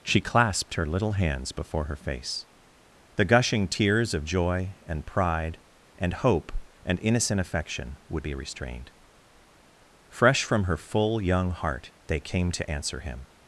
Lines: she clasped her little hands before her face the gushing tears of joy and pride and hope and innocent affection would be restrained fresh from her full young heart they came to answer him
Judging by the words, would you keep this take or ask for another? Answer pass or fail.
pass